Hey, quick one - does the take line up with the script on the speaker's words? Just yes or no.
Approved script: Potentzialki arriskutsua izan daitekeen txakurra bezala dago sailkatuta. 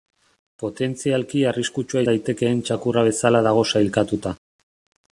no